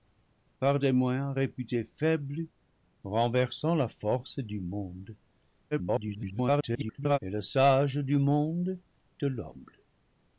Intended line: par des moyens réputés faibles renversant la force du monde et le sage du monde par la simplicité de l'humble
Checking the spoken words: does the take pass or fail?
fail